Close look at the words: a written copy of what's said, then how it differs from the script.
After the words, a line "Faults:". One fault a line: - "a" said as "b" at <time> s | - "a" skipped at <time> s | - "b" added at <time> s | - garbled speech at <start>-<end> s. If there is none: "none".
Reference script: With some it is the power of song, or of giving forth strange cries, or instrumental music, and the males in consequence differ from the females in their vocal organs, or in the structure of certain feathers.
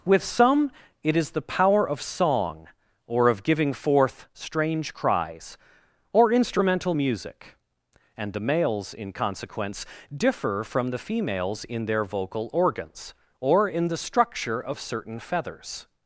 With some it is the power of song, or of giving forth strange cries, or instrumental music, and the males in consequence differ from the females in their vocal organs, or in the structure of certain feathers.
Faults:
none